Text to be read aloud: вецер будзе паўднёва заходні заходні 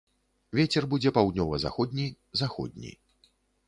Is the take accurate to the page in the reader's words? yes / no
yes